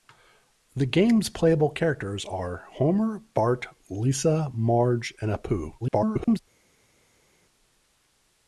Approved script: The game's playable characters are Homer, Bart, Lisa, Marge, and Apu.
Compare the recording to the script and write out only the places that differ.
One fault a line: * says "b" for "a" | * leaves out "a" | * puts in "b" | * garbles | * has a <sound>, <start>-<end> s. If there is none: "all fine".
* garbles